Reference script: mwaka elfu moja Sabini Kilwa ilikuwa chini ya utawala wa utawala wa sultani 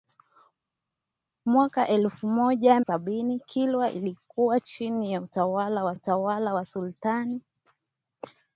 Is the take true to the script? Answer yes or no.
yes